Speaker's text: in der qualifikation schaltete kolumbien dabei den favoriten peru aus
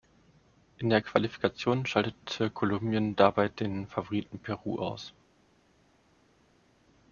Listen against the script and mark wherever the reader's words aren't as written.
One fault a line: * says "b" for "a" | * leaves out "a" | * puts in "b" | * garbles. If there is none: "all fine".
all fine